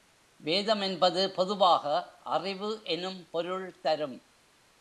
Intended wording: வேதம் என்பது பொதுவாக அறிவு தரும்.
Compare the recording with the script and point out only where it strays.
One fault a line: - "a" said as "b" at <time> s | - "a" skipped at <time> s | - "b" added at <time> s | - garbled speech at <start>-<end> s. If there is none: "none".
- "எனும் பொருள்" added at 2.8 s